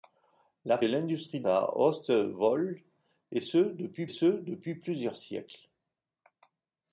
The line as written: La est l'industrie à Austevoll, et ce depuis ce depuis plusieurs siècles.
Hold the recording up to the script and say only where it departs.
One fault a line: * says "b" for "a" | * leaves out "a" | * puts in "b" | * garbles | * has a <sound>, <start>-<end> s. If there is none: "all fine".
all fine